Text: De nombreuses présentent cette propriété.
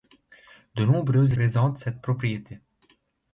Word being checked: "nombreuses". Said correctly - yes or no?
yes